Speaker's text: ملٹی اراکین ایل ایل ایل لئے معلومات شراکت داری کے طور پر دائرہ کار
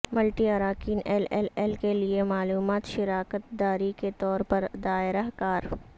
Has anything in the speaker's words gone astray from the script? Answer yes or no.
yes